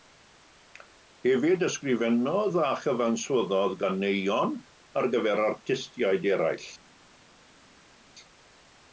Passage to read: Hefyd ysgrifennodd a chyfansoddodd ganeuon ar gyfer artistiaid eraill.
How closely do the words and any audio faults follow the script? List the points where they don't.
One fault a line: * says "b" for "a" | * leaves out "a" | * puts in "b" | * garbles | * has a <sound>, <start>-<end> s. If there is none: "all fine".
all fine